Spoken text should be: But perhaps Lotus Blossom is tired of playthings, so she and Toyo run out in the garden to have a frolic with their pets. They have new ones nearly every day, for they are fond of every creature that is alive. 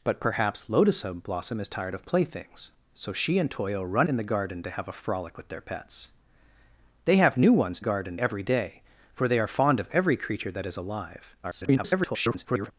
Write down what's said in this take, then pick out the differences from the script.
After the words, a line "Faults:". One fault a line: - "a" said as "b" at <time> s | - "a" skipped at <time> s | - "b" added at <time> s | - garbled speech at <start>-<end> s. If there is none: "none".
But perhaps Lotus Blossom is tired of playthings, so she and Toyo run in the garden to have a frolic with their pets. They have new ones garden every day, for they are fond of every creature that is alive. [garbled]
Faults:
- "out" skipped at 4.1 s
- "nearly" said as "garden" at 7.8 s
- garbled speech at 11.4-12.7 s